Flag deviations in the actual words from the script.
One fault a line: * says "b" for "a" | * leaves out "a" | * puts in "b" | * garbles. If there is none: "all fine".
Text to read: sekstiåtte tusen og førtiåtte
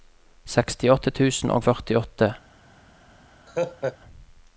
all fine